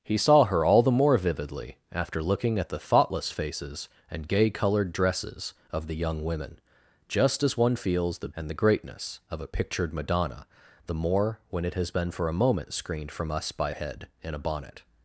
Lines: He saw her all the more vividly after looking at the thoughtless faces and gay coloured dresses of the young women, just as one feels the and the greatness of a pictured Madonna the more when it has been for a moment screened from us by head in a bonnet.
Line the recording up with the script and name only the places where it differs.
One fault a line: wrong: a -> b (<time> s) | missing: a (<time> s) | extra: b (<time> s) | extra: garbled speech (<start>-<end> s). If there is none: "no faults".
no faults